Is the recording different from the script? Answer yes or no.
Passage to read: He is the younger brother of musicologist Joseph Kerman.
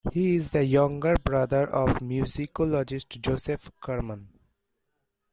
no